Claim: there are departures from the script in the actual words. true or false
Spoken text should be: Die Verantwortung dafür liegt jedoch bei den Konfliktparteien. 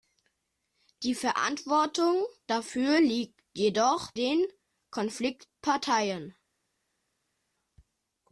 true